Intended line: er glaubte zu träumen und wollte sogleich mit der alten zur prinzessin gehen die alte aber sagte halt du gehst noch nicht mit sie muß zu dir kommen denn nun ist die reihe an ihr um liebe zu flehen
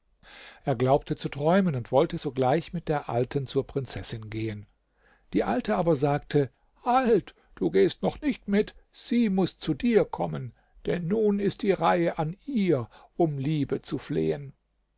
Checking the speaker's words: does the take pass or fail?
pass